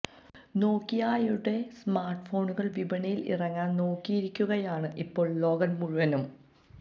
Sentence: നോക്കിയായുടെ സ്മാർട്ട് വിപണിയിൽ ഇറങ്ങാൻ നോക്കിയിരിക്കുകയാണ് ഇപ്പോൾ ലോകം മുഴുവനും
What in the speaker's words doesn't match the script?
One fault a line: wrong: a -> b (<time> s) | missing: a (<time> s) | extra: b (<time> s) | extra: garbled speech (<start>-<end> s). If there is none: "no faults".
extra: ഫോണുകൾ (2.3 s)